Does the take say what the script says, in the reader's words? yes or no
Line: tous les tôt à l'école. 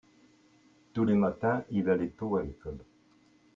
no